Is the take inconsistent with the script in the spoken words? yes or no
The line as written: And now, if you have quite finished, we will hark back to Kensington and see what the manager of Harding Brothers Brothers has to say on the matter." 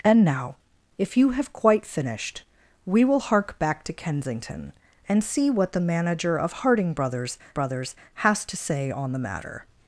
no